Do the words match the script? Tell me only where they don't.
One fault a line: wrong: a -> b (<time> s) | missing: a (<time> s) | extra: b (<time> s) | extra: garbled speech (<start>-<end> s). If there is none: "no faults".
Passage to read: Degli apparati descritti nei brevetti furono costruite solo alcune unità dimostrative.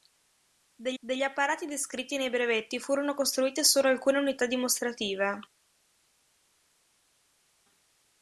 extra: degli (1.0 s)